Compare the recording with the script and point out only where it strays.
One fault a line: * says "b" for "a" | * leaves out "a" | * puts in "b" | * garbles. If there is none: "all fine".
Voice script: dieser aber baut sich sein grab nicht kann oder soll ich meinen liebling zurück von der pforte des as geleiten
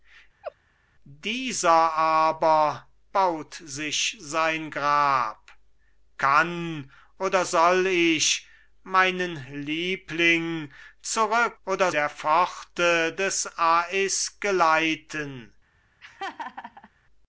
* leaves out "nicht"
* says "oder" for "von"